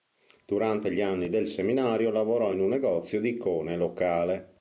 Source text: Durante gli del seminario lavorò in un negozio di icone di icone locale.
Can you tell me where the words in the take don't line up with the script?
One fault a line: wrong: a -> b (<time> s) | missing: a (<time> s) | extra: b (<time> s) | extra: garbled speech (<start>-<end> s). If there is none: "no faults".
extra: anni (1.0 s)
missing: di icone (3.7 s)